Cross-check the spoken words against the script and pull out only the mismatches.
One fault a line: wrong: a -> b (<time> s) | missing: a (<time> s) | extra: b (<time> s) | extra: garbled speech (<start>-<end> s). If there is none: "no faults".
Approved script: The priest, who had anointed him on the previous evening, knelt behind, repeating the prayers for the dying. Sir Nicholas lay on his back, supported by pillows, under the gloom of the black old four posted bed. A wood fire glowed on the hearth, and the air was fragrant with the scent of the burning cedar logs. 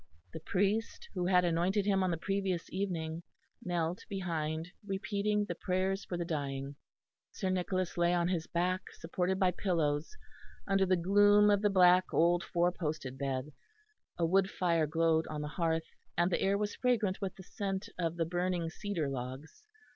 no faults